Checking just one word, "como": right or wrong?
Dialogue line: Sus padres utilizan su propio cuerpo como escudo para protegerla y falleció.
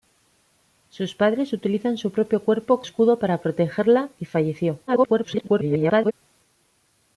wrong